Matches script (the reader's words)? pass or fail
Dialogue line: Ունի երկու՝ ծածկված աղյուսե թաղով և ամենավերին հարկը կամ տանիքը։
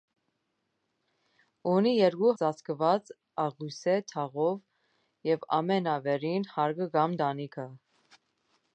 pass